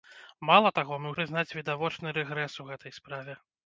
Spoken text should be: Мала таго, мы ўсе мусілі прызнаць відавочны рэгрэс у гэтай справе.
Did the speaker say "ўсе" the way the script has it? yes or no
no